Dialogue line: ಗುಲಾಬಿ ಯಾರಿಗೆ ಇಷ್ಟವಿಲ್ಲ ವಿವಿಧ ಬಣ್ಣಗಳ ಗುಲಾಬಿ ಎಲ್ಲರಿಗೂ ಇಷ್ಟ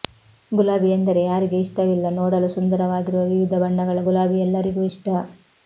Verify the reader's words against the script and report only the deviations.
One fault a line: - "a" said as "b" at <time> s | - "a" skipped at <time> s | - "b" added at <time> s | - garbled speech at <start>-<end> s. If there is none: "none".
- "ಎಂದರೆ" added at 0.9 s
- "ನೋಡಲು ಸುಂದರವಾಗಿರುವ" added at 2.1 s